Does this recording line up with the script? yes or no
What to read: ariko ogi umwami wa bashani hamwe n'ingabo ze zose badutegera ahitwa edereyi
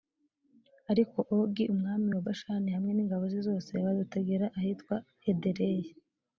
yes